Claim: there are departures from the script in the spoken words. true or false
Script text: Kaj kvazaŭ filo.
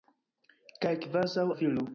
false